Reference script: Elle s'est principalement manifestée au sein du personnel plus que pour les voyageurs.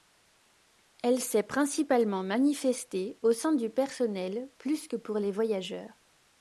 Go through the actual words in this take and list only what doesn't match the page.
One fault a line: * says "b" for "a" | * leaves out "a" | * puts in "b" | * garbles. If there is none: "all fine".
all fine